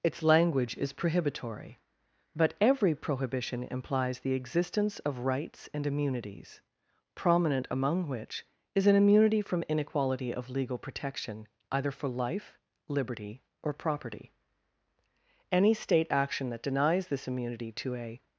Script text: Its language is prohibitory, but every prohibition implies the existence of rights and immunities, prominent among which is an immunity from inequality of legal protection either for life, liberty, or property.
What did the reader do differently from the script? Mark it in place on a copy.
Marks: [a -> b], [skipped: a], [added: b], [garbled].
Its language is prohibitory, but every prohibition implies the existence of rights and immunities, prominent among which is an immunity from inequality of legal protection either for life, liberty, or property. [added: Any State action that denies this immunity to a]